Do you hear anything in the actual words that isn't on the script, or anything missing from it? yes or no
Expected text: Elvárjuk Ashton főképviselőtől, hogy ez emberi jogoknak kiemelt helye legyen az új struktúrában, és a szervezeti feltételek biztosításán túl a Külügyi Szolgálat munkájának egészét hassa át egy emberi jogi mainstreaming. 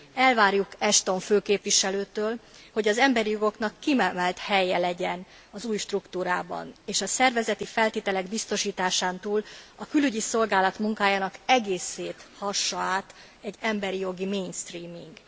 yes